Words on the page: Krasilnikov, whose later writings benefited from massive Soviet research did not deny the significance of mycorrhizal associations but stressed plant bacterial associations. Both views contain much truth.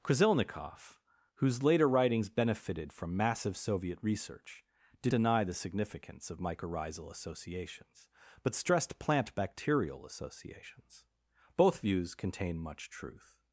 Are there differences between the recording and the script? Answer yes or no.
yes